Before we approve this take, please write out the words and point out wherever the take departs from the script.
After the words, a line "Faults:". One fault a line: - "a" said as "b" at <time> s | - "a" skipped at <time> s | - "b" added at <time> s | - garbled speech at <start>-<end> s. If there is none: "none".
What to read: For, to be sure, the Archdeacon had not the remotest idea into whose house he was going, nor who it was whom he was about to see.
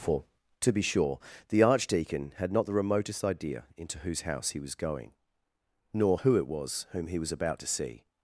For, to be sure, the Archdeacon had not the remotest idea into whose house he was going, nor who it was whom he was about to see.
Faults:
none